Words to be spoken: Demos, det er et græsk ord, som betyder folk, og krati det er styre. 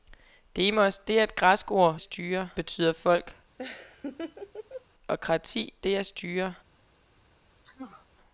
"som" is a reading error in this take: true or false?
true